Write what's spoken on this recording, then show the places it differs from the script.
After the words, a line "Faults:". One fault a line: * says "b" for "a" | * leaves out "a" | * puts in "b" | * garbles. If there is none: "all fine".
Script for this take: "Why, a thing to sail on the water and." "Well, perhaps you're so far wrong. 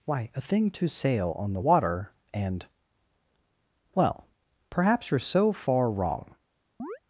"Why, a thing to sail on the water and." "Well, perhaps you're so far wrong.
Faults:
all fine